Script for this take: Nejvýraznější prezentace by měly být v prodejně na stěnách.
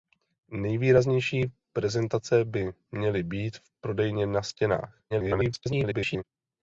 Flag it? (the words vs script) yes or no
yes